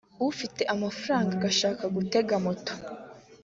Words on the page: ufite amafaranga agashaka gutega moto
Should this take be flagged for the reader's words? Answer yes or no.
no